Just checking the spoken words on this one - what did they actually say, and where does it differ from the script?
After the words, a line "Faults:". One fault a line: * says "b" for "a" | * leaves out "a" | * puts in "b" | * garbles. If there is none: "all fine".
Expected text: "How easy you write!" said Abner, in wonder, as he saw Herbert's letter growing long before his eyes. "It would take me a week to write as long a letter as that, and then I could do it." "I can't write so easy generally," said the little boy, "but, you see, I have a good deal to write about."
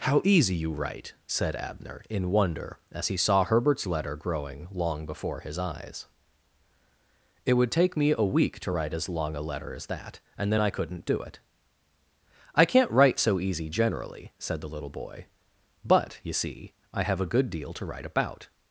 "How easy you write!" said Abner, in wonder, as he saw Herbert's letter growing long before his eyes. "It would take me a week to write as long a letter as that, and then I couldn't do it." "I can't write so easy generally," said the little boy, "but, you see, I have a good deal to write about."
Faults:
* says "couldn't" for "could"